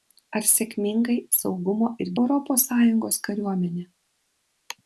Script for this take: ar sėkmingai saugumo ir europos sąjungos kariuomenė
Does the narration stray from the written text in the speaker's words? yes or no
no